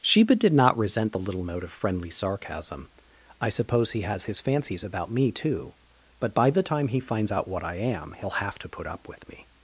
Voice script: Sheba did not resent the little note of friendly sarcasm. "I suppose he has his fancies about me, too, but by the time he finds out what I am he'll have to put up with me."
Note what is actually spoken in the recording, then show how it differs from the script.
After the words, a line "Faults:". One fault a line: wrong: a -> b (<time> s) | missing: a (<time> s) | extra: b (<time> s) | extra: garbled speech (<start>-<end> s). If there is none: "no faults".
Sheba did not resent the little note of friendly sarcasm. "I suppose he has his fancies about me, too, but by the time he finds out what I am he'll have to put up with me."
Faults:
no faults